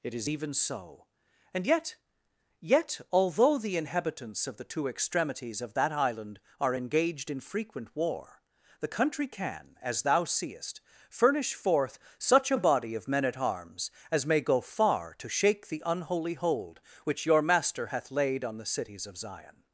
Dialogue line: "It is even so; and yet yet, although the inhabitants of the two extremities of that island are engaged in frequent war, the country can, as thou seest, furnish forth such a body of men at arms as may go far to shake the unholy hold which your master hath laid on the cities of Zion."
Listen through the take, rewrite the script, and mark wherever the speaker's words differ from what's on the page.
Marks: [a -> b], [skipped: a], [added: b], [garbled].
"It is even so; and yet yet, although the inhabitants of the two extremities of that island are engaged in frequent war, the country can, as thou seest, furnish forth such a body of men at arms as may go far to shake the unholy hold which your master hath laid on the cities of Zion."